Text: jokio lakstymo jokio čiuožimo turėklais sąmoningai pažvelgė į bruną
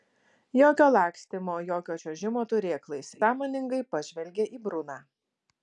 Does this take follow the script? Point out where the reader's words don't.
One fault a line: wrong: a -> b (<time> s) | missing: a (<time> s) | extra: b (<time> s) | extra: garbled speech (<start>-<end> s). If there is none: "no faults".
no faults